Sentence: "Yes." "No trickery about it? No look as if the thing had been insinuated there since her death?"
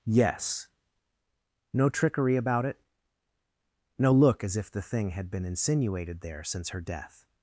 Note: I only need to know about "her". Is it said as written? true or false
true